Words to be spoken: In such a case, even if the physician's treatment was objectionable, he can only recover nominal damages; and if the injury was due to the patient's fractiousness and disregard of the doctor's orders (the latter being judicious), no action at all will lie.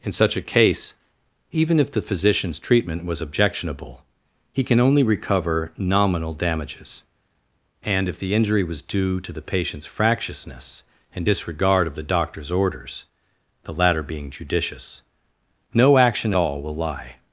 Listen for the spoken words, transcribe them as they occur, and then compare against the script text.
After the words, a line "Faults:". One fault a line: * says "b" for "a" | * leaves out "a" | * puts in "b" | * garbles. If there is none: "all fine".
In such a case, even if the physician's treatment was objectionable, he can only recover nominal damages; and if the injury was due to the patient's fractiousness and disregard of the doctor's orders (the latter being judicious), no action all will lie.
Faults:
* leaves out "at"